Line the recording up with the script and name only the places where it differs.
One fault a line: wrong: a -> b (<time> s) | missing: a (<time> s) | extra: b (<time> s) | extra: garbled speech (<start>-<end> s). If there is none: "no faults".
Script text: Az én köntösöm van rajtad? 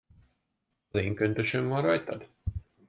no faults